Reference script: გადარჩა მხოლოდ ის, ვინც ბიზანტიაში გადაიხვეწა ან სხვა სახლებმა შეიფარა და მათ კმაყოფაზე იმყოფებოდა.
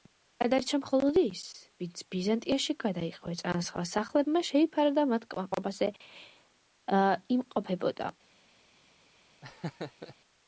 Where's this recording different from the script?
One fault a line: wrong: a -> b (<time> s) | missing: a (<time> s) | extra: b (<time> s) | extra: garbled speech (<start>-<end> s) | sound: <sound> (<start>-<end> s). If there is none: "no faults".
sound: laugh (9.4-10.2 s)